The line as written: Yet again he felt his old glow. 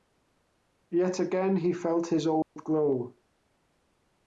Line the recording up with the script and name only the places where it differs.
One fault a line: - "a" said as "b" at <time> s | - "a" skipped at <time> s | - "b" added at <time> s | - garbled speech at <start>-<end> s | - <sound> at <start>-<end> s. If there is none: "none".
- dropout at 2.4-2.6 s